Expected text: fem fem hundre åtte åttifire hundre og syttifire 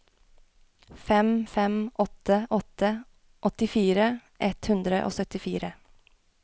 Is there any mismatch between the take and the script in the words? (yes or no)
yes